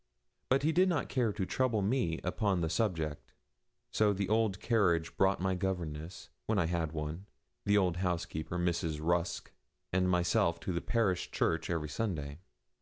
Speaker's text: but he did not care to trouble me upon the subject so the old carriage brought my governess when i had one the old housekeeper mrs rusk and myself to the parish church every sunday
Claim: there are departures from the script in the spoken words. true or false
false